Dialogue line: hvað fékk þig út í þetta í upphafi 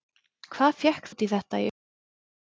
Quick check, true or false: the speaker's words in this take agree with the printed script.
false